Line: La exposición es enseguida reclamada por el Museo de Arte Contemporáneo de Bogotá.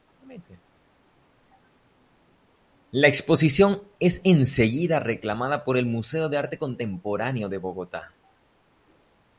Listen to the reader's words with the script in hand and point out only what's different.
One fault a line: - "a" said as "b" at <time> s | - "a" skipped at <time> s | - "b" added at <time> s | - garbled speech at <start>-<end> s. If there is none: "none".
none